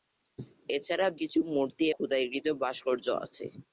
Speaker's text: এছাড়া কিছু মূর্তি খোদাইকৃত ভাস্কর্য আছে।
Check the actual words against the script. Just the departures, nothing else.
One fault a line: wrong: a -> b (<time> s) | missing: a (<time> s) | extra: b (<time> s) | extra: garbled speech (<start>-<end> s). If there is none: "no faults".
no faults